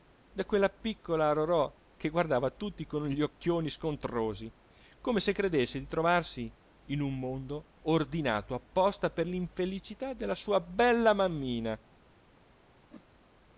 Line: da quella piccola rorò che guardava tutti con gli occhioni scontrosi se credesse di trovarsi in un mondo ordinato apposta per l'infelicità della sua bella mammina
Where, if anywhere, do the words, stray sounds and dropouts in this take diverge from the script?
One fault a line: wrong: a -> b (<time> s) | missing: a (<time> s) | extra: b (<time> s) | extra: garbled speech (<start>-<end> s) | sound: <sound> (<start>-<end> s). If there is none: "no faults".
extra: come (5.0 s)
sound: whoosh (12.9-13.0 s)